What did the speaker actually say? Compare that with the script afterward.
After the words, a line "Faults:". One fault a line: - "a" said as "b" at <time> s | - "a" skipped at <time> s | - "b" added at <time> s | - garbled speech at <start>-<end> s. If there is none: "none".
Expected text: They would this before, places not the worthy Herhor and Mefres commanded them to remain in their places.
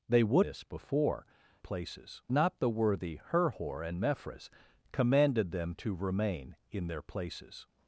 They would this before, places not the worthy Herhor and Mefres commanded them to remain in their places.
Faults:
none